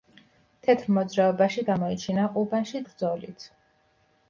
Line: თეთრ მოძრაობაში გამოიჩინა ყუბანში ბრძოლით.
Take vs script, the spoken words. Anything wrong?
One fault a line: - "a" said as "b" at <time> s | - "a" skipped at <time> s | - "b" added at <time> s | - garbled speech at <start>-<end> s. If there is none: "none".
none